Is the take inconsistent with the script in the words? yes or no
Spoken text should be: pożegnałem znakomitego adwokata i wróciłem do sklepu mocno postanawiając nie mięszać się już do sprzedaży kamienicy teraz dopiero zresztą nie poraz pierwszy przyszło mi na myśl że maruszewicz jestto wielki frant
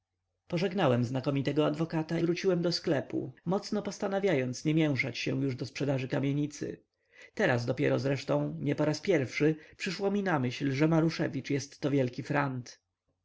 yes